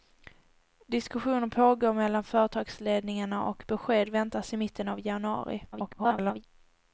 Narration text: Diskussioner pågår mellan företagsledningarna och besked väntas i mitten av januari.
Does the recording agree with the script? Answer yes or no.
no